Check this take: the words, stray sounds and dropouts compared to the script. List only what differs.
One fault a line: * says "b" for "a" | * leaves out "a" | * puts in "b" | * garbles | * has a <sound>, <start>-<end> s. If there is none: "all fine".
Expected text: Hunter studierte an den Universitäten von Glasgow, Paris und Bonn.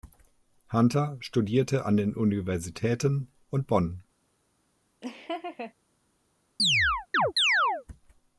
* leaves out "von Glasgow Paris"
* has a laugh, 5.0-5.7 s
* has a chirp, 6.6-7.8 s